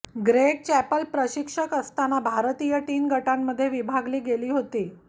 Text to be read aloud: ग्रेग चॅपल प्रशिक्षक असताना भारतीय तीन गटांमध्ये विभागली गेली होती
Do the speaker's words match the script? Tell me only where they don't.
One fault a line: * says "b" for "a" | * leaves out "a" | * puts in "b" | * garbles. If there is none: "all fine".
all fine